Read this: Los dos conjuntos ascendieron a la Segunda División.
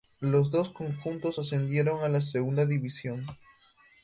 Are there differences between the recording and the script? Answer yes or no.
no